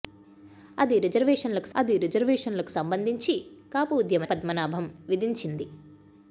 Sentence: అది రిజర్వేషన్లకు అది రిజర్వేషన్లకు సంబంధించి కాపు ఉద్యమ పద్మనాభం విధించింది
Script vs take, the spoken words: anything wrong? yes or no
no